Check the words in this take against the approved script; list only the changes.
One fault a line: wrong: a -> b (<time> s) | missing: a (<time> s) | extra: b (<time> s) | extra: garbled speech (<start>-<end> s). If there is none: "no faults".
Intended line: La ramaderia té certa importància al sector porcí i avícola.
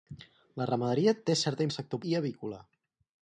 missing: importància (1.7 s)
missing: porcí (2.0 s)